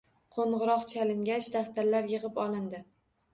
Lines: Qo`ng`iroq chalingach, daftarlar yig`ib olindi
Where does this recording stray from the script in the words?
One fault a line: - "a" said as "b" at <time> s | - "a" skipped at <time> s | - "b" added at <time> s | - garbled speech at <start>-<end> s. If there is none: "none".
none